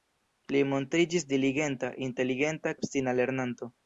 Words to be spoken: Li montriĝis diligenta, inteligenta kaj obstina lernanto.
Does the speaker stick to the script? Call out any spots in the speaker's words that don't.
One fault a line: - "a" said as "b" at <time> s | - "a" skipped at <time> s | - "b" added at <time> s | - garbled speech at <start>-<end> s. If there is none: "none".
- "kaj" skipped at 2.8 s